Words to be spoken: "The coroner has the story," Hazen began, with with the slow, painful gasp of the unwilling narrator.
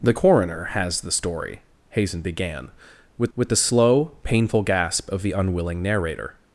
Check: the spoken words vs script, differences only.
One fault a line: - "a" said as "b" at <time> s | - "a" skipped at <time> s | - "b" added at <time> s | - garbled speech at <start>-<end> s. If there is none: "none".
none